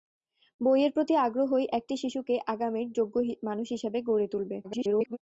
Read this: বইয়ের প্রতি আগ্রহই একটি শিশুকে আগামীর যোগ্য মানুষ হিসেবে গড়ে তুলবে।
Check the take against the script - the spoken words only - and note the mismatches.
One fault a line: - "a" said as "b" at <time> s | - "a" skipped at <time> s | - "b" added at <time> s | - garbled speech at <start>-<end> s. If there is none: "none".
- garbled speech at 4.6-5.2 s